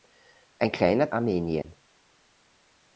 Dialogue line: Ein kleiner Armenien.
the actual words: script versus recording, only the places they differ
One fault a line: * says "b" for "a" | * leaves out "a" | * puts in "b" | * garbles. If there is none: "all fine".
all fine